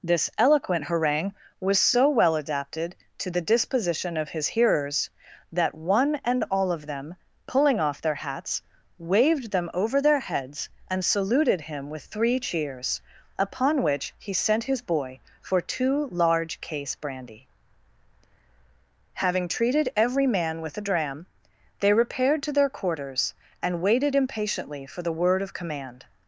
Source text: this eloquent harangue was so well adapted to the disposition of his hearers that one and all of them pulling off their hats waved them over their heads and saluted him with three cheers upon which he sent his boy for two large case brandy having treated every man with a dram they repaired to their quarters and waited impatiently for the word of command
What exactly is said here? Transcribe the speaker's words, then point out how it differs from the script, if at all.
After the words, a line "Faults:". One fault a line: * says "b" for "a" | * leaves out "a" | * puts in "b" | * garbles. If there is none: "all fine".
this eloquent harangue was so well adapted to the disposition of his hearers that one and all of them pulling off their hats waved them over their heads and saluted him with three cheers upon which he sent his boy for two large case brandy having treated every man with a dram they repaired to their quarters and waited impatiently for the word of command
Faults:
all fine